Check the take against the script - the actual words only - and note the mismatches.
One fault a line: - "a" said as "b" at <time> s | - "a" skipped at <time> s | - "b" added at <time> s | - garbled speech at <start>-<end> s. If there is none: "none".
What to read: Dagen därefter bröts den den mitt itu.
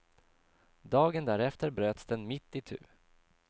- "den" skipped at 2.3 s